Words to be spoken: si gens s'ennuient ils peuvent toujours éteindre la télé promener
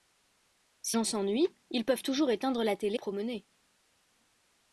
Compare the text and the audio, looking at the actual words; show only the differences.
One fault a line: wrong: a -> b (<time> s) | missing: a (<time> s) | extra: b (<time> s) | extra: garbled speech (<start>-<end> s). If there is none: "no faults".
no faults